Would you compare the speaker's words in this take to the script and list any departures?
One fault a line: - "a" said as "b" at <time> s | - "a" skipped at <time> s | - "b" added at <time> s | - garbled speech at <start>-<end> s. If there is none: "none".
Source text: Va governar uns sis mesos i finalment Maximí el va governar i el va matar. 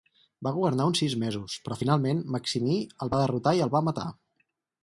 - "i" said as "però" at 1.7 s
- "governar" said as "derrotar" at 3.2 s